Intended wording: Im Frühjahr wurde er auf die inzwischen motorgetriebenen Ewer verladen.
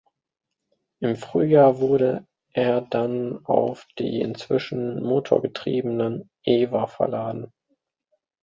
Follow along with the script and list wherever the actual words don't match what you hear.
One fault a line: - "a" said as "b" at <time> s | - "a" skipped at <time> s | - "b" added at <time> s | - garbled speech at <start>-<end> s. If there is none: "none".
- "dann" added at 2.8 s